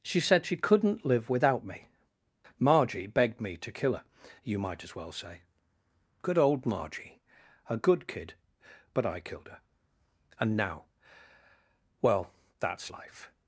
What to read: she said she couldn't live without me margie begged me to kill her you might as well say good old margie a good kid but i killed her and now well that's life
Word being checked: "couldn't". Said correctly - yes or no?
yes